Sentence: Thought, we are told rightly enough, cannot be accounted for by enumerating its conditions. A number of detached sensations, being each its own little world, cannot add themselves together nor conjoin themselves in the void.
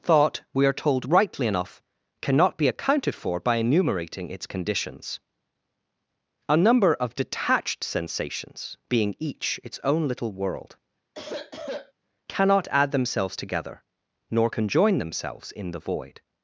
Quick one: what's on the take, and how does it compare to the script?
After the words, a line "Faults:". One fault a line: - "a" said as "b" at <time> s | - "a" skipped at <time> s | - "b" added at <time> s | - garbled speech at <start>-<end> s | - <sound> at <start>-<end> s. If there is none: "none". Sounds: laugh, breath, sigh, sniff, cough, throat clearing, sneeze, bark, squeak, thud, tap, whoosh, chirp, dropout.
Thought, we are told rightly enough, cannot be accounted for by enumerating its conditions. A number of detached sensations, being each its own little world, cannot add themselves together nor conjoin themselves in the void.
Faults:
- sniff at 11.1-11.9 s